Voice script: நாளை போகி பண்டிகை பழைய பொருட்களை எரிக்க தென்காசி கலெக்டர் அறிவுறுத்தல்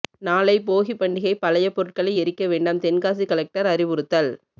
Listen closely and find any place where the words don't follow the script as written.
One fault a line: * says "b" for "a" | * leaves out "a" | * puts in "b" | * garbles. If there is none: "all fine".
* puts in "வேண்டாம்"